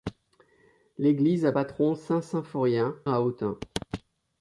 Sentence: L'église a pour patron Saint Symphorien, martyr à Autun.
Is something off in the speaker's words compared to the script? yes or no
yes